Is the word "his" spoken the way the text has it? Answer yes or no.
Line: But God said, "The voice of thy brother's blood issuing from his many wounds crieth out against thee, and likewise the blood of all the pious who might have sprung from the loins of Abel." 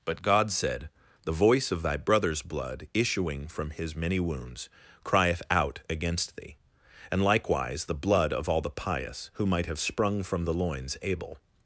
yes